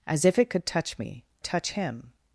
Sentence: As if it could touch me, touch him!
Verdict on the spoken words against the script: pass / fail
pass